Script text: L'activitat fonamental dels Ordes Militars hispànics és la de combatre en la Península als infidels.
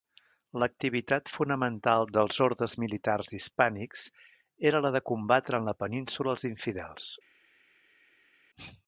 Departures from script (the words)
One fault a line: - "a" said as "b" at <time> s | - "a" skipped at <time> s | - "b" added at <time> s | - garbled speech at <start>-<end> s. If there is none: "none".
- "és" said as "era" at 4.7 s